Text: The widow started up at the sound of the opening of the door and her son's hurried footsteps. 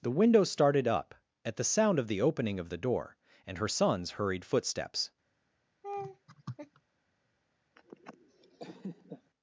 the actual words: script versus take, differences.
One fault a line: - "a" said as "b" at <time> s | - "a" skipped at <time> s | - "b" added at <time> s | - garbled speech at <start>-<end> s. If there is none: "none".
- "widow" said as "window" at 0.1 s